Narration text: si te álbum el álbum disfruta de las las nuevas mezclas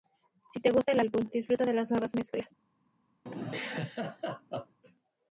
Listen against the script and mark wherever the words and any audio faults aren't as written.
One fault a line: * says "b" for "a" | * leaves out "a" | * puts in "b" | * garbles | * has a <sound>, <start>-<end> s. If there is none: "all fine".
* says "gusta" for "álbum"
* leaves out "las"
* has a laugh, 3.3-4.8 s